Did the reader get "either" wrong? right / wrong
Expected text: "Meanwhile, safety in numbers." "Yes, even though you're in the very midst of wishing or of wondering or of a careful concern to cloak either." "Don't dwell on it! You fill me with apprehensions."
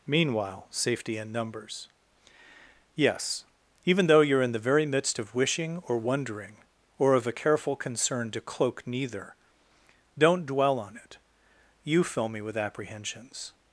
wrong